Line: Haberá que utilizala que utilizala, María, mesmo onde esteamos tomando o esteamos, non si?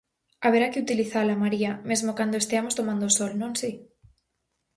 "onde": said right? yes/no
no